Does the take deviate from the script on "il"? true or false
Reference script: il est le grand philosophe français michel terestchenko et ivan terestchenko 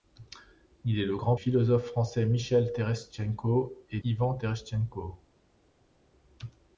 false